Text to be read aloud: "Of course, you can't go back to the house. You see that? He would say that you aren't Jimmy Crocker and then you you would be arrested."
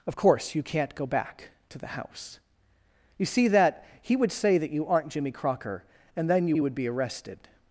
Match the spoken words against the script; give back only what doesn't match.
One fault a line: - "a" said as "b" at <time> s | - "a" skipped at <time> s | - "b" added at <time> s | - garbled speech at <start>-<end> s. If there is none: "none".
none